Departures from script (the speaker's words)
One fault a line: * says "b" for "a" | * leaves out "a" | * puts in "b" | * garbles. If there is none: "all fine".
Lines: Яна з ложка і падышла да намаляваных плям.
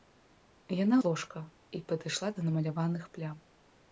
all fine